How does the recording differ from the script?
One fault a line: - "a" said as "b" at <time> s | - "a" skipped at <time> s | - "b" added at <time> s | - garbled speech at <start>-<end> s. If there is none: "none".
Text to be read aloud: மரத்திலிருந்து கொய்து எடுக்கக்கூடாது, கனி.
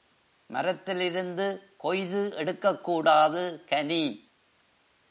none